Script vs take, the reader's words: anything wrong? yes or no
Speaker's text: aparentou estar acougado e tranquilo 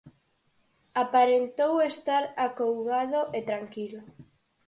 no